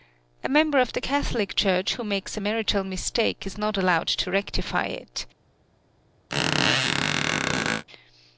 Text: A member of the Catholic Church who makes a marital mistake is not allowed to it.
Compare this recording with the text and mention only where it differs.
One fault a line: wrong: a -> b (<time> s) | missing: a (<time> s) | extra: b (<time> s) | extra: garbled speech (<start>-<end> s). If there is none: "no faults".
extra: rectify (4.3 s)